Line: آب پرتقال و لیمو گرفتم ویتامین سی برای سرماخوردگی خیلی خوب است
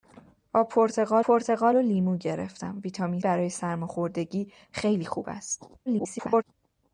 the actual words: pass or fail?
fail